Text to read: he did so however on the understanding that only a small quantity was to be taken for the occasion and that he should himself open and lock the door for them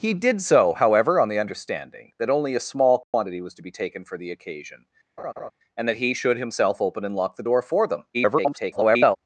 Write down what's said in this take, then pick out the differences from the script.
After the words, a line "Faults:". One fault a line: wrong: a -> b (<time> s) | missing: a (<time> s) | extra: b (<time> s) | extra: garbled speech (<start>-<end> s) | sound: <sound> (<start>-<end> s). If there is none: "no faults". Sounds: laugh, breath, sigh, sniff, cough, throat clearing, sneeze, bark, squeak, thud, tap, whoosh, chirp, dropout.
he did so however on the understanding that only a small quantity was to be taken for the occasion and that he should himself open and lock the door for them [garbled]
Faults:
sound: dropout (3.0-3.1 s)
sound: laugh (5.2-5.5 s)
extra: garbled speech (8.1-9.2 s)